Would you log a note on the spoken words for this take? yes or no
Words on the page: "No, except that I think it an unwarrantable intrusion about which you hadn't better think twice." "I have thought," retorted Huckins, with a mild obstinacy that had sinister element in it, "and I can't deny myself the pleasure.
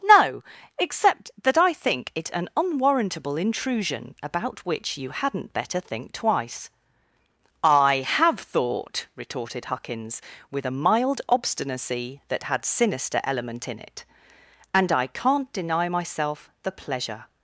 no